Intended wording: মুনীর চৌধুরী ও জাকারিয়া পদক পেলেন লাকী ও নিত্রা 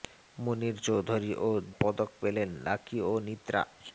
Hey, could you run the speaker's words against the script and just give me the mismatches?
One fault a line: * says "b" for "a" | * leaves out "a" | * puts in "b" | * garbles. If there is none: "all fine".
* leaves out "জাকারিয়া"